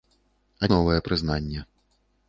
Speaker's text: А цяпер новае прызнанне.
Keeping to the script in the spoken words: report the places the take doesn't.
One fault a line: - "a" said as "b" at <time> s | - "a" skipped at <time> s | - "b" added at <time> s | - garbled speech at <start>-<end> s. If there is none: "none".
- "цяпер" skipped at 0.7 s